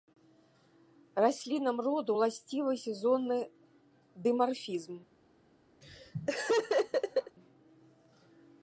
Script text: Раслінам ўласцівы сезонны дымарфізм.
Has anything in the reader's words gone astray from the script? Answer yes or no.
yes